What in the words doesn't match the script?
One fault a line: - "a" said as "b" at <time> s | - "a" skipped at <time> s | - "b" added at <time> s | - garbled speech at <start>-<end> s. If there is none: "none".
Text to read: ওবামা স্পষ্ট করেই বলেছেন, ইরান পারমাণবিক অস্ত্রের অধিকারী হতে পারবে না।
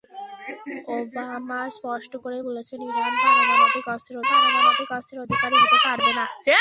- "পারমাণবিক অস্ত্রের" added at 4.3 s